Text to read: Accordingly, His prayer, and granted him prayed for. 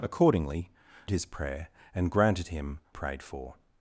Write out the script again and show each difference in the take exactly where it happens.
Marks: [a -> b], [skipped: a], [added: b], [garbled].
Accordingly, His prayer, and granted him prayed for.